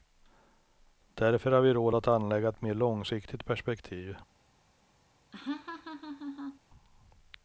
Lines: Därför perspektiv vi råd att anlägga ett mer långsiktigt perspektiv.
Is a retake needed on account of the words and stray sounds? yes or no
yes